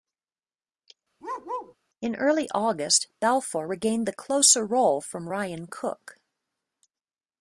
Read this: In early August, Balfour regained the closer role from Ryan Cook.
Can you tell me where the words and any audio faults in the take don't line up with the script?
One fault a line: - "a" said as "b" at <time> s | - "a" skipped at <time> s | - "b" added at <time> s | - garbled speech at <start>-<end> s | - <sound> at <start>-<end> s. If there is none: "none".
- bark at 1.2-1.8 s